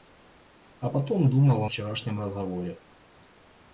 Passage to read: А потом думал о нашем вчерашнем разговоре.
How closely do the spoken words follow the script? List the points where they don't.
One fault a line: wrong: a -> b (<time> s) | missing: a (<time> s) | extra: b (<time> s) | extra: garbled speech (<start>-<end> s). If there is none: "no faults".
missing: нашем (1.7 s)